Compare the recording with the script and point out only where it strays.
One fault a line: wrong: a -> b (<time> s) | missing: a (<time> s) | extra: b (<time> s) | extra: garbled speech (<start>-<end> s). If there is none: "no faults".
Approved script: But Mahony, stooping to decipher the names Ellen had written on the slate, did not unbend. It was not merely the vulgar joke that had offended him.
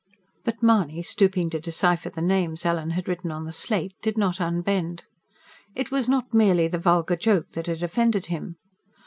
no faults